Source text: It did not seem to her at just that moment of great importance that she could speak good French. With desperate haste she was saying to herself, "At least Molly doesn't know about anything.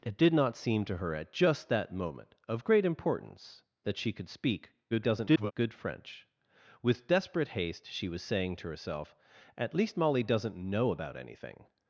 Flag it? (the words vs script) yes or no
yes